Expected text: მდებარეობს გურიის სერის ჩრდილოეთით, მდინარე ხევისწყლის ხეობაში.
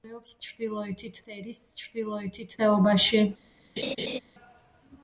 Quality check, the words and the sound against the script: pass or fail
fail